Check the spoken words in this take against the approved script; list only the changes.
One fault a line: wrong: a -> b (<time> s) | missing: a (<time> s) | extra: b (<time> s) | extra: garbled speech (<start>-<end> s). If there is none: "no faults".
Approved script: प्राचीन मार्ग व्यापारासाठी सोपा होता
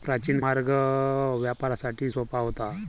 no faults